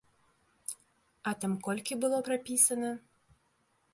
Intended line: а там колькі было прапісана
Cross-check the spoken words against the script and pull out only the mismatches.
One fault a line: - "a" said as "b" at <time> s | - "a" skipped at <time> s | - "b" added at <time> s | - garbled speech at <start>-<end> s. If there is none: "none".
none